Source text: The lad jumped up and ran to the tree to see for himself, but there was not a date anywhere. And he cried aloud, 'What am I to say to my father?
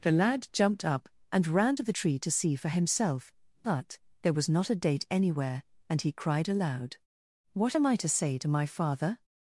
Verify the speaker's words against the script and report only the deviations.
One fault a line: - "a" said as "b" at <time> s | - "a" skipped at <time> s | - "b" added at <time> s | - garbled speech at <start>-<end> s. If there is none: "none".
none